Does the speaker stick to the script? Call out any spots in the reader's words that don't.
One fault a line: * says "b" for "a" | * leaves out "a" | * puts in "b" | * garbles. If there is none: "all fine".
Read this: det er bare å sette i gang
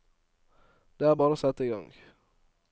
all fine